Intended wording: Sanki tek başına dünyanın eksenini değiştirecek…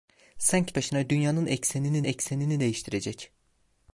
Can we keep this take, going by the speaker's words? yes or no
no